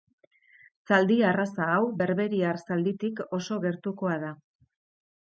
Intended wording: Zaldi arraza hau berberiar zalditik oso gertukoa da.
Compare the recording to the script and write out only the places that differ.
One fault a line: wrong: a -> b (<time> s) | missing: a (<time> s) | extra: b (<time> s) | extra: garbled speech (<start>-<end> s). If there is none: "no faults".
no faults